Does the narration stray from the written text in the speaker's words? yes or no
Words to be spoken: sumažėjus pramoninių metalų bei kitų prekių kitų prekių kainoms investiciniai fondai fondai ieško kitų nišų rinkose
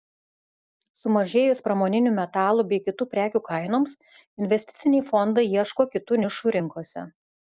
yes